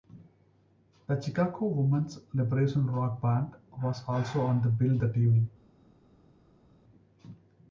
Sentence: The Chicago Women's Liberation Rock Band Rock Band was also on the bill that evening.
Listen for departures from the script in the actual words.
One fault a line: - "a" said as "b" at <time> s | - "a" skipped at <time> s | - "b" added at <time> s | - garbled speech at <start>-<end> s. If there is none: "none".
- "Rock Band" skipped at 3.5 s